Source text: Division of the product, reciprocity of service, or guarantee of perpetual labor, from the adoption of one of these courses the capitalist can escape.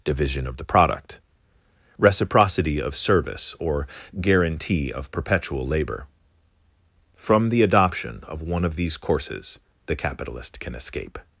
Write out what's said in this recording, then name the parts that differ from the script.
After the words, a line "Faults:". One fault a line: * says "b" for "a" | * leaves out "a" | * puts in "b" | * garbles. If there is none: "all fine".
Division of the product, reciprocity of service, or guarantee of perpetual labor, from the adoption of one of these courses the capitalist can escape.
Faults:
all fine